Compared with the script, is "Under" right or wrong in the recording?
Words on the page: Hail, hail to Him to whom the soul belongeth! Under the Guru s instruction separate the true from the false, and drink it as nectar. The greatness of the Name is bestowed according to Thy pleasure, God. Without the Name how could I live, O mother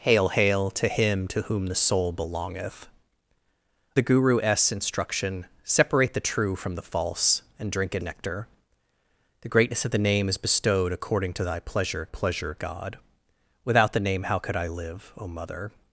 wrong